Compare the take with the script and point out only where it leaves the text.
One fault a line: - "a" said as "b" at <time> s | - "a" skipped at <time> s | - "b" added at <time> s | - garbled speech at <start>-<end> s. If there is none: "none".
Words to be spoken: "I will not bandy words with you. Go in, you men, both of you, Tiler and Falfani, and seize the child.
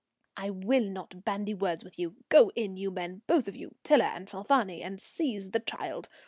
none